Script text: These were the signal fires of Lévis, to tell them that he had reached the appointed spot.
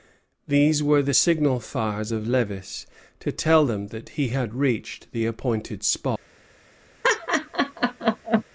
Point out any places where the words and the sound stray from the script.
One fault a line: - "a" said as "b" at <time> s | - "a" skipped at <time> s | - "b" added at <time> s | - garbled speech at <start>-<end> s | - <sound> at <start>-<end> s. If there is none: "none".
- laugh at 7.0-8.4 s